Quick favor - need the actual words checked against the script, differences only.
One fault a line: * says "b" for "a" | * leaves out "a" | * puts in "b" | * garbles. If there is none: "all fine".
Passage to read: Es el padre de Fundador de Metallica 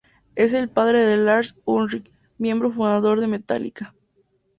* puts in "Lars Ulrich miembro"